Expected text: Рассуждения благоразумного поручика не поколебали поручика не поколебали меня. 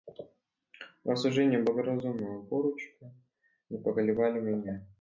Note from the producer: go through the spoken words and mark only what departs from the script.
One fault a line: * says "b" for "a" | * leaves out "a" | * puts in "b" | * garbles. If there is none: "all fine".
* leaves out "поручика не поколебали"